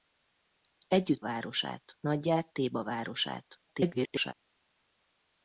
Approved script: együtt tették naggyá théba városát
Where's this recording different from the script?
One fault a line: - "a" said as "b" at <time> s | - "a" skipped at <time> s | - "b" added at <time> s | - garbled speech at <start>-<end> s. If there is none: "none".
- "tették" said as "városát" at 1.2 s
- garbled speech at 3.7-4.3 s